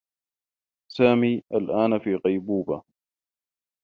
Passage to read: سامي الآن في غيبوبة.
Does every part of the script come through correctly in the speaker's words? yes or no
yes